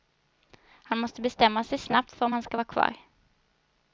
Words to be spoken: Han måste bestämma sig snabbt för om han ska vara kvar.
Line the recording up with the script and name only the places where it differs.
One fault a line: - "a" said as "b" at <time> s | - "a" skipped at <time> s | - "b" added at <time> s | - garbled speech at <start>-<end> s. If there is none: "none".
none